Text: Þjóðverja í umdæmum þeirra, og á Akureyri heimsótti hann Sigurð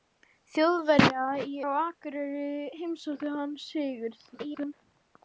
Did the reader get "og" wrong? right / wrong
wrong